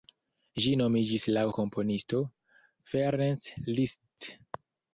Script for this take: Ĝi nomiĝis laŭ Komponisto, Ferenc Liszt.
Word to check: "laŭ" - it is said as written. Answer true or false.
true